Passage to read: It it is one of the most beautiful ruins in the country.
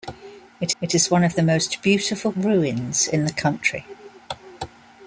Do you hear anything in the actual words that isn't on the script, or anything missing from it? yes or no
no